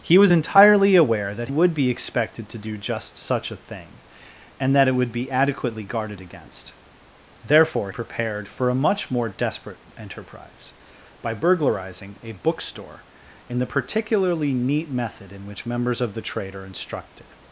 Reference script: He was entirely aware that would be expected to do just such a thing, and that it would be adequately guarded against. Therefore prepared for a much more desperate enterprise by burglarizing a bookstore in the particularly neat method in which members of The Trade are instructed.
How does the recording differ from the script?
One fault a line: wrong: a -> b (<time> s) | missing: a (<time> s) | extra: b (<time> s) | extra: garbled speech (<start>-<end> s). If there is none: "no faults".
no faults